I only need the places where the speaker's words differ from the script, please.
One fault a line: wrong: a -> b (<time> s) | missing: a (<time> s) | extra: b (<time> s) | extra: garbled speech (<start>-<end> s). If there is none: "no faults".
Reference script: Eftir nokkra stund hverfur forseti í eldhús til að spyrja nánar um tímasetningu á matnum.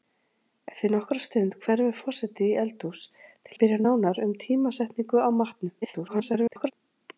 missing: að (3.6 s)
extra: garbled speech (5.8-6.7 s)